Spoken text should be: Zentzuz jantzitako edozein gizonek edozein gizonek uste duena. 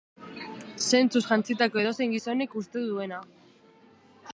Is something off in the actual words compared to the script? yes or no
yes